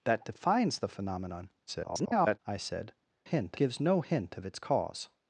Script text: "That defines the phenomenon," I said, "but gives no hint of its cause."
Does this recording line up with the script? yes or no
no